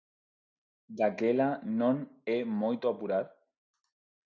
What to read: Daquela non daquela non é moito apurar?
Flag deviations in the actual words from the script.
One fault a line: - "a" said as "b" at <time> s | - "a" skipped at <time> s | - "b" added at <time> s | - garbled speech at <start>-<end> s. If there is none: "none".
- "daquela non" skipped at 1.9 s